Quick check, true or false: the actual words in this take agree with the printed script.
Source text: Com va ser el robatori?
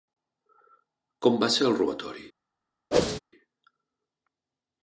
true